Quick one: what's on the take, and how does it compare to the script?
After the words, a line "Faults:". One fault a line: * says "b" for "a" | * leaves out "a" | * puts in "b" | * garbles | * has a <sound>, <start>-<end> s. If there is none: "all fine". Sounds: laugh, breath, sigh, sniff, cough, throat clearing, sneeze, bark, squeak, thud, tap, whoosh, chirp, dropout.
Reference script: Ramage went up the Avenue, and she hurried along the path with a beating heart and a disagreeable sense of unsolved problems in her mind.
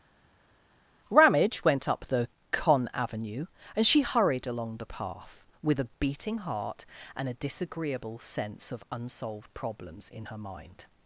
Ramage went up the con Avenue, and she hurried along the path with a beating heart and a disagreeable sense of unsolved problems in her mind.
Faults:
* puts in "con"